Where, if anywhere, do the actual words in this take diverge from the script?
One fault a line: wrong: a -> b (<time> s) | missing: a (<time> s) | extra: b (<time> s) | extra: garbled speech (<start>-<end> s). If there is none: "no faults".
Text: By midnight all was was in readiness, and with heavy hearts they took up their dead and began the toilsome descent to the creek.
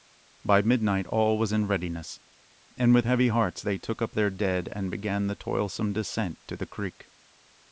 missing: was (1.5 s)